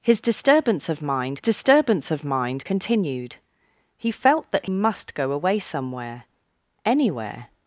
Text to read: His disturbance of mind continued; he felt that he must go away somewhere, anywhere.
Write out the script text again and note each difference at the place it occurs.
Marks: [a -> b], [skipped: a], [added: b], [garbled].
His disturbance of mind [added: disturbance of mind] continued; he felt that [skipped: he] must go away somewhere, anywhere.